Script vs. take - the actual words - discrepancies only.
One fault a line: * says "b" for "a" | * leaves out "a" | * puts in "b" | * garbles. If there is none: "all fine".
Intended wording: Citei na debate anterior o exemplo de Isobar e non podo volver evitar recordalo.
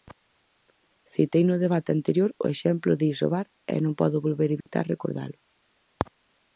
* says "no" for "na"